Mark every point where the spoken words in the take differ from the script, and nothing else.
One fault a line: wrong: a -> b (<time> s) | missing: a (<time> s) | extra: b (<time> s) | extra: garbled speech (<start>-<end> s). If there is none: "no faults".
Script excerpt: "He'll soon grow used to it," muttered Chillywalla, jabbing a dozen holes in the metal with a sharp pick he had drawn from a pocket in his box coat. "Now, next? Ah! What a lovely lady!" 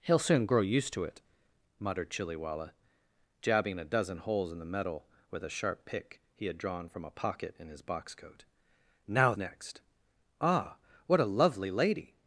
no faults